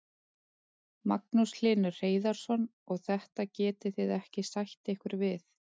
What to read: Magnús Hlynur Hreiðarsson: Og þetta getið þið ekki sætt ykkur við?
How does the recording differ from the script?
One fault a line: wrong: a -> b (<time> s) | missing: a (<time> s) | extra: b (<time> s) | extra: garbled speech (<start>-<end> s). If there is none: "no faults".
no faults